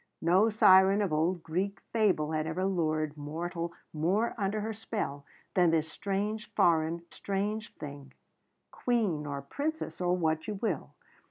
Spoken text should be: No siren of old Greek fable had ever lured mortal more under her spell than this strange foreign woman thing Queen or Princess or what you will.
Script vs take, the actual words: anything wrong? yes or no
yes